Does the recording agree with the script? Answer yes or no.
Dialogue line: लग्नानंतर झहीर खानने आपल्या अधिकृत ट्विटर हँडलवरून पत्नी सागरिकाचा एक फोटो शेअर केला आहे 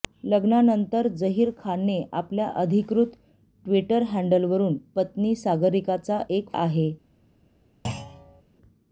no